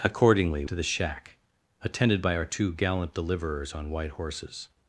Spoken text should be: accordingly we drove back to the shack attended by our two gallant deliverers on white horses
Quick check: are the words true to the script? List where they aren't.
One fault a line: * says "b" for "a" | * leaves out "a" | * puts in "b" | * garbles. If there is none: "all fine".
* leaves out "we drove back"